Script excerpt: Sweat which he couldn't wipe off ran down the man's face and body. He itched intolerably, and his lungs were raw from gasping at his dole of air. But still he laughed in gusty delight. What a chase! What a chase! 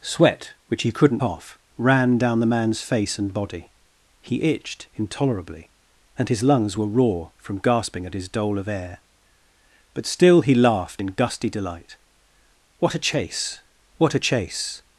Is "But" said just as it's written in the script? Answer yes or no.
yes